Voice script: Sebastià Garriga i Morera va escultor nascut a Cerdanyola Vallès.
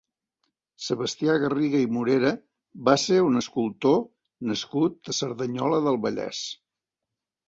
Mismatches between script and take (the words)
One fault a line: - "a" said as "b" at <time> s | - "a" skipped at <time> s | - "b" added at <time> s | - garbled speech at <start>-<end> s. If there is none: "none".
- "ser un" added at 3.0 s
- "del" added at 5.9 s